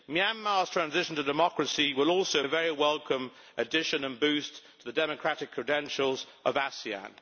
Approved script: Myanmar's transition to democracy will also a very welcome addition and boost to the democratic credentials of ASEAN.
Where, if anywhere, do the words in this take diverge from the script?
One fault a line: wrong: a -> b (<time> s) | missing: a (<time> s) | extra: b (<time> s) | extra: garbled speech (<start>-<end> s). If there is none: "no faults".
no faults